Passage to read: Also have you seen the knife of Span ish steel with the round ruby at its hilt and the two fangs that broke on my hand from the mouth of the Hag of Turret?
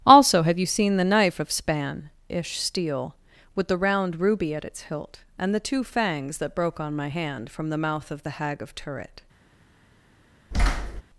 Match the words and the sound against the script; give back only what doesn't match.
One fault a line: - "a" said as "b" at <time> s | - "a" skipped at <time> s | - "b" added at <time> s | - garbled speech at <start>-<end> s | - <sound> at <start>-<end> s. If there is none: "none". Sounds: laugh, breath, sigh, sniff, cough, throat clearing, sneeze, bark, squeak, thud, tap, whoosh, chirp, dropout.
- thud at 10.5-11.0 s